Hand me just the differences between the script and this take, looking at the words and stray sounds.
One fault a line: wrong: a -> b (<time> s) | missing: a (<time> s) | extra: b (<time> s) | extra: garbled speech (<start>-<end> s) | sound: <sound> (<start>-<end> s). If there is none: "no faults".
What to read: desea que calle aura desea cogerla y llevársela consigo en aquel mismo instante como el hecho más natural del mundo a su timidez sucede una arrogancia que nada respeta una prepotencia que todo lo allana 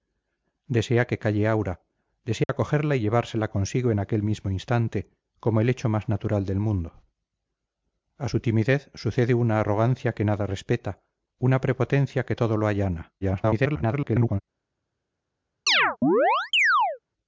sound: dropout (2.4-2.5 s)
extra: garbled speech (13.2-14.4 s)
sound: chirp (15.7-17.0 s)